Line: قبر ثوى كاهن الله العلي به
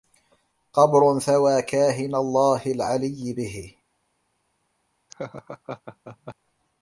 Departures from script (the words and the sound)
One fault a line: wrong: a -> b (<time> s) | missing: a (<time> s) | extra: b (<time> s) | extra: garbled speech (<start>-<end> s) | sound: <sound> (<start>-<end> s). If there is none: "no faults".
sound: laugh (5.1-6.3 s)